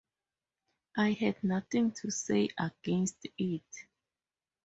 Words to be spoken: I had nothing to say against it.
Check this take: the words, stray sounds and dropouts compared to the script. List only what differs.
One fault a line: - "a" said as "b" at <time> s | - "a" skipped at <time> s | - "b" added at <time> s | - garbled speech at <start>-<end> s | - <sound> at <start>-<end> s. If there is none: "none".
none